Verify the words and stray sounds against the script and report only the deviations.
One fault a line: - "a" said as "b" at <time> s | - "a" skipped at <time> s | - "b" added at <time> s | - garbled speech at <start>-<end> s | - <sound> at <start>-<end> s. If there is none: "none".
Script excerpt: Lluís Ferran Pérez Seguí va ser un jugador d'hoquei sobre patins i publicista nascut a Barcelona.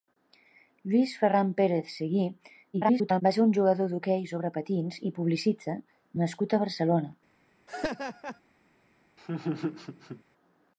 - garbled speech at 2.7-3.2 s
- laugh at 7.7-8.4 s
- laugh at 9.2-10.2 s